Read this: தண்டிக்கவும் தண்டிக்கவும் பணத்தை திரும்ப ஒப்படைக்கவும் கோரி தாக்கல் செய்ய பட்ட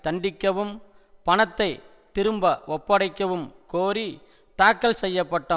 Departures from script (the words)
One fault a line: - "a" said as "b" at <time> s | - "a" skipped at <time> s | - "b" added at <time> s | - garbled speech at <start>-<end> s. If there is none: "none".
- "தண்டிக்கவும்" skipped at 0.7 s